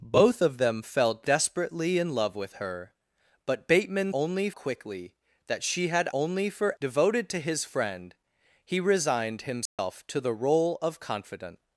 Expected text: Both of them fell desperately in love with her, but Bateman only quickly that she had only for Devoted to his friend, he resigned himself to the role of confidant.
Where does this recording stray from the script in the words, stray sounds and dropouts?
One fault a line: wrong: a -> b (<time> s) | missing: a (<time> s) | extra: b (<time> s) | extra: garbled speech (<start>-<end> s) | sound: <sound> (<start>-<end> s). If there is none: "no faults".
sound: dropout (9.7-9.8 s)